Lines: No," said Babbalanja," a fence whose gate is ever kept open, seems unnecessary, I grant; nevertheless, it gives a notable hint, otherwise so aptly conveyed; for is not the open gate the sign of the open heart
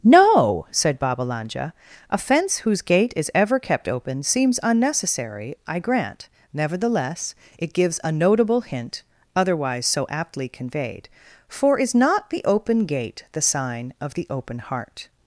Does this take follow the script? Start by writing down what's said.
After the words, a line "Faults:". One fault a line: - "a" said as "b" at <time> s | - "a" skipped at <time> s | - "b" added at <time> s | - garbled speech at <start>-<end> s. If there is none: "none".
No," said Babbalanja," a fence whose gate is ever kept open, seems unnecessary, I grant; nevertheless, it gives a notable hint, otherwise so aptly conveyed; for is not the open gate the sign of the open heart
Faults:
none